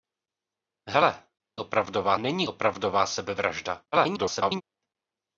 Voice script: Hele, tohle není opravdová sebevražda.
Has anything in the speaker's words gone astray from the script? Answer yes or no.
yes